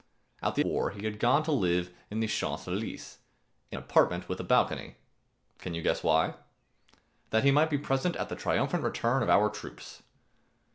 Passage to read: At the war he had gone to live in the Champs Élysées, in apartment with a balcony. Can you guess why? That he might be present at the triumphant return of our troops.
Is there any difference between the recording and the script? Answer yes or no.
no